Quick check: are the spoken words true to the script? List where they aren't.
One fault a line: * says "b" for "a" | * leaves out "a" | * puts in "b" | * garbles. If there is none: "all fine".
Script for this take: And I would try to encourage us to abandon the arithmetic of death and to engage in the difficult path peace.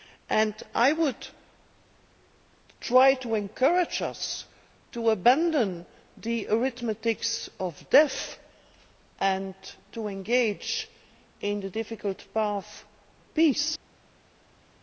all fine